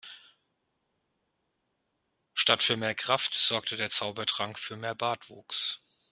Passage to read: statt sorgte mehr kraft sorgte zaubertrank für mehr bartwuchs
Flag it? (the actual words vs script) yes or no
yes